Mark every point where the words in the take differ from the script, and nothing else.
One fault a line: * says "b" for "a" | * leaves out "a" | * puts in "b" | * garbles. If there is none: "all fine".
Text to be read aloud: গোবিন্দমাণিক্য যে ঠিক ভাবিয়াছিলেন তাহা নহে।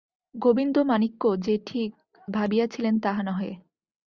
all fine